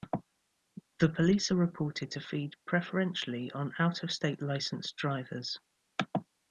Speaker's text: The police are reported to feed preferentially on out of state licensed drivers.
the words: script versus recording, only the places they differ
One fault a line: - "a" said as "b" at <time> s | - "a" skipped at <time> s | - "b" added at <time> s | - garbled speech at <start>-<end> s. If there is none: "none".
none